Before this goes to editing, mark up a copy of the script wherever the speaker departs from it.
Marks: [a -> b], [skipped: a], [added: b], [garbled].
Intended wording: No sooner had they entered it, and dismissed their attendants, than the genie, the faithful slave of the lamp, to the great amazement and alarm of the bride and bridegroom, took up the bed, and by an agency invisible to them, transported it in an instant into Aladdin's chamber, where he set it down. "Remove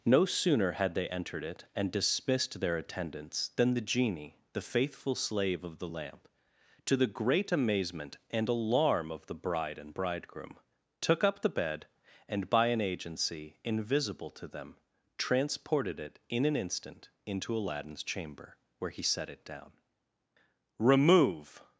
No sooner had they entered it, and dismissed their attendants, than the genie, the faithful slave of the lamp, to the great amazement and alarm of the bride and bridegroom, took up the bed, and by an agency invisible to them, transported it in an instant into Aladdin's chamber, where he set it down. "Remove